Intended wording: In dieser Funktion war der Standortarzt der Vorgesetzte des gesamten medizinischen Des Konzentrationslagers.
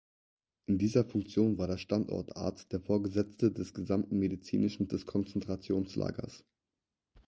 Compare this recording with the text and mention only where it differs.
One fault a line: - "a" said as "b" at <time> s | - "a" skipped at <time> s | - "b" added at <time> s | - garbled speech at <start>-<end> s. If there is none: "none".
none